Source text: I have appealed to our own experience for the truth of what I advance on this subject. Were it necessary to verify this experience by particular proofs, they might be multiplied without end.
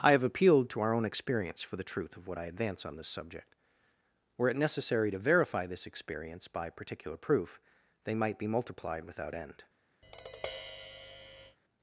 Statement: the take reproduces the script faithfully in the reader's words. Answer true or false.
false